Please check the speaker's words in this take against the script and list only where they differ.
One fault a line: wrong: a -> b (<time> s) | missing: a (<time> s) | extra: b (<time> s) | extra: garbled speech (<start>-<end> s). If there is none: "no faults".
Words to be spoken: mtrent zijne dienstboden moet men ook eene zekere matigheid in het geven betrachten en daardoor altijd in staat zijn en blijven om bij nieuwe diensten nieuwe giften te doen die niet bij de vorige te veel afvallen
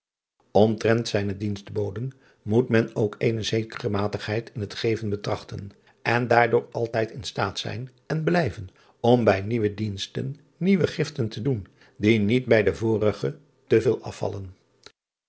no faults